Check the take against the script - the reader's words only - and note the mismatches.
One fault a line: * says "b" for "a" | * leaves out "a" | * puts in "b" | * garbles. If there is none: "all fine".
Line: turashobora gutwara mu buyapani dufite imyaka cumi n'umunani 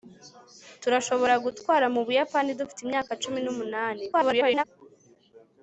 * garbles